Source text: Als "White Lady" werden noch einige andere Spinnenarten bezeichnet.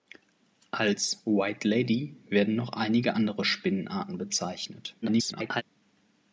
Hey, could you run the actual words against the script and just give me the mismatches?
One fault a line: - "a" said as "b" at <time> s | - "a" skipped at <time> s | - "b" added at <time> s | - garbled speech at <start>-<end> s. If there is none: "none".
- garbled speech at 5.0-5.6 s